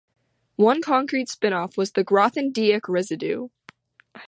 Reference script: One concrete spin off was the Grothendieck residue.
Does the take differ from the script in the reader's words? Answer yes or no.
no